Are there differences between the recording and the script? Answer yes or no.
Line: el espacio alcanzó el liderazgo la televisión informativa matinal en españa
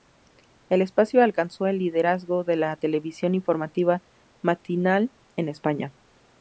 yes